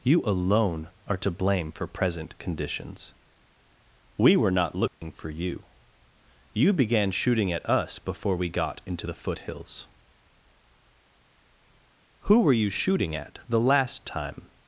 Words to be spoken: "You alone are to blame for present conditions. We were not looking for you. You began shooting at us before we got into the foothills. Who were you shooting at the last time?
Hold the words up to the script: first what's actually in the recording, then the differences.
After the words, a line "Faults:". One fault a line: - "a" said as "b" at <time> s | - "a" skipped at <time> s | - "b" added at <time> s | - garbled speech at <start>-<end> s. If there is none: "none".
"You alone are to blame for present conditions. We were not looking for you. You began shooting at us before we got into the foothills. Who were you shooting at the last time?
Faults:
none